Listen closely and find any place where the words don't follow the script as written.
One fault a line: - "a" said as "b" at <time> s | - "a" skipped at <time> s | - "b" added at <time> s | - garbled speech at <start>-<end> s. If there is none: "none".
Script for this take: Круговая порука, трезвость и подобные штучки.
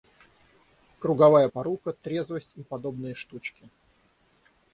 none